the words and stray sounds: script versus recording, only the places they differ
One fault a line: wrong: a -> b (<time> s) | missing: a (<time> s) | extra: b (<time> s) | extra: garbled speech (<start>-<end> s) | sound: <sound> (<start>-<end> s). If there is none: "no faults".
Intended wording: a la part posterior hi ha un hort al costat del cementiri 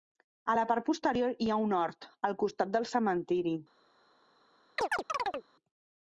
sound: chirp (4.8-5.5 s)